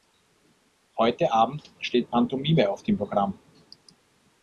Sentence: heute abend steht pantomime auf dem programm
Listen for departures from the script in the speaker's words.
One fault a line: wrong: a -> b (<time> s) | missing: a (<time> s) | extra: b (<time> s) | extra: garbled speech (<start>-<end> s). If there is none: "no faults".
no faults